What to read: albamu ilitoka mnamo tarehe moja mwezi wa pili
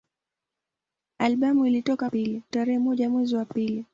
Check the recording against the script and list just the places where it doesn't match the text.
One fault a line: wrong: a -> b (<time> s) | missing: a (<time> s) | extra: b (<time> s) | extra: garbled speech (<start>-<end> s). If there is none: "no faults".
wrong: mnamo -> pili (2.0 s)